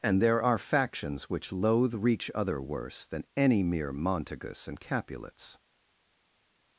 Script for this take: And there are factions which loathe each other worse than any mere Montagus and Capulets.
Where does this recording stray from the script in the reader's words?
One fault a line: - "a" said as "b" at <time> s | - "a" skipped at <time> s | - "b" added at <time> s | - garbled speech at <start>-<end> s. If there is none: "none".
- "each" said as "reach" at 1.9 s